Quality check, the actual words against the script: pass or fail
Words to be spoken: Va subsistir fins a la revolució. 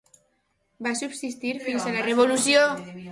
pass